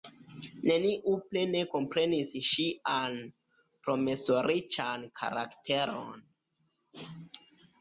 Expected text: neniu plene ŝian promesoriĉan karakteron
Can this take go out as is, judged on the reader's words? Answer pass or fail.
fail